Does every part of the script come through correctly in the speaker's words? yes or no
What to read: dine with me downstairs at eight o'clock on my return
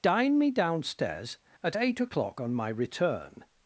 no